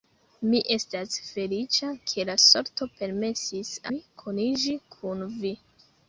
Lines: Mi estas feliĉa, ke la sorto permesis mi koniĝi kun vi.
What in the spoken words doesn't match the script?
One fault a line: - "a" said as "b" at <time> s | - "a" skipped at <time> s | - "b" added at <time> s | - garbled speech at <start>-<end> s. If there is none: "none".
none